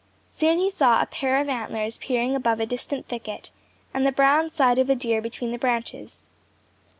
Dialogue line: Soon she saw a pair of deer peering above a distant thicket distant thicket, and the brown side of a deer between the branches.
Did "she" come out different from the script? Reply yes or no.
yes